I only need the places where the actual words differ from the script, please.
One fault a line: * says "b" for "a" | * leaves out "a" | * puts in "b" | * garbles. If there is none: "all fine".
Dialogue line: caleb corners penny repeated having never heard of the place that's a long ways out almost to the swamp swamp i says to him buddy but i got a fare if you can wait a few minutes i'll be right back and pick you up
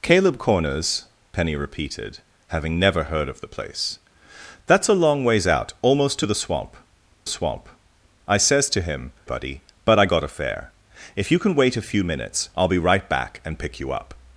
all fine